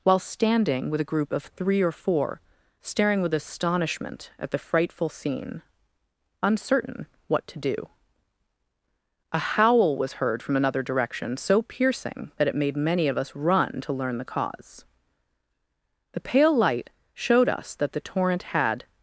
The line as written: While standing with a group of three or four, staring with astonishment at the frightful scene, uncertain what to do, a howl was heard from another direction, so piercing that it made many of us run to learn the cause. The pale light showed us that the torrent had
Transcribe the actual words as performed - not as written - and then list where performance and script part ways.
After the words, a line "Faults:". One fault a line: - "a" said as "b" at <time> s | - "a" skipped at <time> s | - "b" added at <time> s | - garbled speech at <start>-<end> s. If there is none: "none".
While standing with a group of three or four, staring with astonishment at the frightful scene, uncertain what to do, a howl was heard from another direction, so piercing that it made many of us run to learn the cause. The pale light showed us that the torrent had
Faults:
none